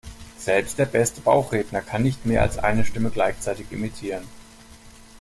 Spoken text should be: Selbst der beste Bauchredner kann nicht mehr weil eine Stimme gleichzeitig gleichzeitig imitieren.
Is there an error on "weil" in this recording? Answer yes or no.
yes